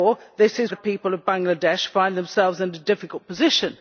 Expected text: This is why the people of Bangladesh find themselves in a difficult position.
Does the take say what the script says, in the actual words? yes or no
no